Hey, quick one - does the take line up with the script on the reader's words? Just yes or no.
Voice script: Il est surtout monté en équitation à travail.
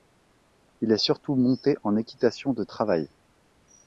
no